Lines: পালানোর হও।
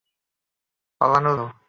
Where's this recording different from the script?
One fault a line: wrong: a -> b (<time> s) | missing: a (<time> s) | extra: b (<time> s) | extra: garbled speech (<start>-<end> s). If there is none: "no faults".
no faults